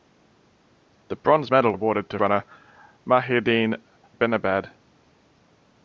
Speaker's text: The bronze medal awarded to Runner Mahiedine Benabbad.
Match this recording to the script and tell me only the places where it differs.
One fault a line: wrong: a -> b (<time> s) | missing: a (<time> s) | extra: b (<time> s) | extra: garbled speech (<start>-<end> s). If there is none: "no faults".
no faults